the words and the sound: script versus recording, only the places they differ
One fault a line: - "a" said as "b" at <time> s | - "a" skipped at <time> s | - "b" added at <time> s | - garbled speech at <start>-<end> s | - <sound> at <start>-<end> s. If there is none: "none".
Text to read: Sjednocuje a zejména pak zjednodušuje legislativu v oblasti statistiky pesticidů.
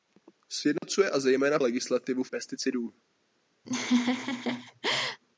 - dropout at 0.8-0.8 s
- "pak zjednodušuje" skipped at 1.6 s
- "oblasti statistiky" skipped at 2.3 s
- laugh at 3.6-5.2 s